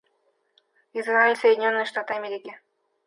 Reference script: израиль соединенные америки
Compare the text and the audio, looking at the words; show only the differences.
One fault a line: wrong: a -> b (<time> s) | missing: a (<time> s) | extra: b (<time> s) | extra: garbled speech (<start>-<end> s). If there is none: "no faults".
extra: штаты (1.8 s)